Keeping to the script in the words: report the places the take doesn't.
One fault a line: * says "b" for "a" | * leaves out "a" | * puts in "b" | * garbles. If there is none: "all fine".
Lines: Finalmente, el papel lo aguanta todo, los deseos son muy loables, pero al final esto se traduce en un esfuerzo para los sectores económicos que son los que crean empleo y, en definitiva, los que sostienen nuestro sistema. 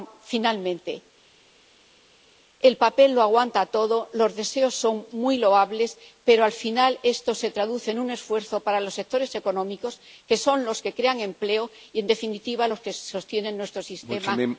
all fine